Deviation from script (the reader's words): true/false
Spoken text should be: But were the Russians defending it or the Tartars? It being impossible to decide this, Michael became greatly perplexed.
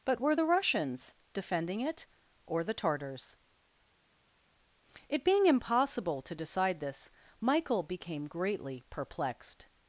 false